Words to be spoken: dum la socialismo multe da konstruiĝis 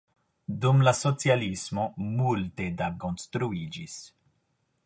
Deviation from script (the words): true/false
false